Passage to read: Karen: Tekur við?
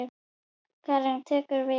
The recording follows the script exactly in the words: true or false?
true